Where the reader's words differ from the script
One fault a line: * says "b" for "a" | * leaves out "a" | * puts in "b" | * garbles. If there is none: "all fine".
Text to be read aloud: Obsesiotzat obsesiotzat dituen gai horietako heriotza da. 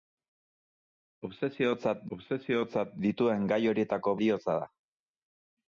all fine